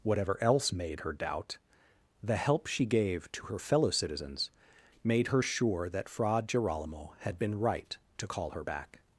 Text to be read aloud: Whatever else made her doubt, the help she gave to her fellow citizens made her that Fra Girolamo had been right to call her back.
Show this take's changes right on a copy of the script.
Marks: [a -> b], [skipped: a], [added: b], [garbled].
Whatever else made her doubt, the help she gave to her fellow citizens made her [added: sure] that Fra Girolamo had been right to call her back.